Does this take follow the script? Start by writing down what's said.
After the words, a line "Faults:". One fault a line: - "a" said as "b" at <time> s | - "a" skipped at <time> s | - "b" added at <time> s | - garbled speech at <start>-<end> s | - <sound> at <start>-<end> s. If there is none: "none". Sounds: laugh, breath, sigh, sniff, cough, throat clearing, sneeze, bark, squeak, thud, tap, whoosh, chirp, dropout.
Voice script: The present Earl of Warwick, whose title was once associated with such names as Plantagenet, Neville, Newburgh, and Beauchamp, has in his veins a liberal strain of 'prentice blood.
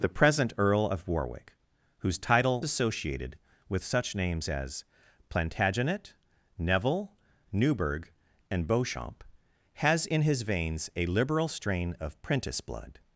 The present Earl of Warwick, whose title associated with such names as Plantagenet, Neville, Newburgh, and Beauchamp, has in his veins a liberal strain of 'prentice blood.
Faults:
- "was once" skipped at 2.6 s